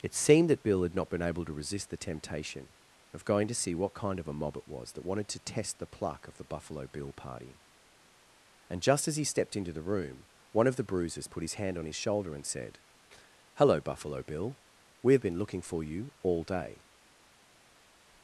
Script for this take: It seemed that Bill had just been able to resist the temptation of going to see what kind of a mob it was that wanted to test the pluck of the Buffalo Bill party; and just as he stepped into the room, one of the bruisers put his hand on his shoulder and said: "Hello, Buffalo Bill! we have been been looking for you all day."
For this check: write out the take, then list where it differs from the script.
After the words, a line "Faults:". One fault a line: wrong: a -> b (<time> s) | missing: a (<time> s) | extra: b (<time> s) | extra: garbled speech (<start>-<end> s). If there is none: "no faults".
It seemed that Bill had not been able to resist the temptation of going to see what kind of a mob it was that wanted to test the pluck of the Buffalo Bill party; and just as he stepped into the room, one of the bruisers put his hand on his shoulder and said: "Hello, Buffalo Bill! we have been looking for you all day."
Faults:
wrong: just -> not (0.9 s)
missing: been (15.4 s)